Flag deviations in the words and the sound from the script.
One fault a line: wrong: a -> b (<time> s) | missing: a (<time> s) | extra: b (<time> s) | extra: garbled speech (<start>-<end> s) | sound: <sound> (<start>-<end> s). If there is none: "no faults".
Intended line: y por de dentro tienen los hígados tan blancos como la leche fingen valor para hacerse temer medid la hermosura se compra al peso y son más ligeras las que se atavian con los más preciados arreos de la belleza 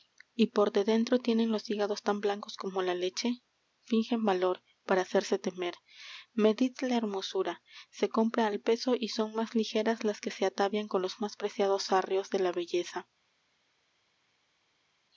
no faults